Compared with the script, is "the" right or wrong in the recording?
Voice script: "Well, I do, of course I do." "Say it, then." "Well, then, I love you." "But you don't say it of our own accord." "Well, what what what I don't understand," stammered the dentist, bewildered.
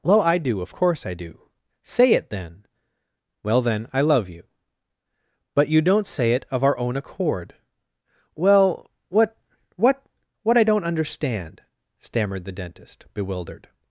right